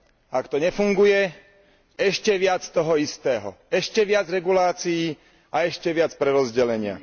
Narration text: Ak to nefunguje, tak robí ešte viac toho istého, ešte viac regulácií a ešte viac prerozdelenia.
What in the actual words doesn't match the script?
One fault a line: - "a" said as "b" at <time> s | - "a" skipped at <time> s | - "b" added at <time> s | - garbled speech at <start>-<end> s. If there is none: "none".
- "tak robí" skipped at 1.4 s